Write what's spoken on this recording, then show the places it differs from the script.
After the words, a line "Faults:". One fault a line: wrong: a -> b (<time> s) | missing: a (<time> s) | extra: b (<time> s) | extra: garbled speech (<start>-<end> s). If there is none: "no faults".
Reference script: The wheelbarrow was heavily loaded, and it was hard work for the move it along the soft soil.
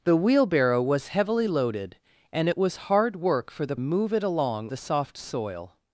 The wheelbarrow was heavily loaded, and it was hard work for the move it along the soft soil.
Faults:
no faults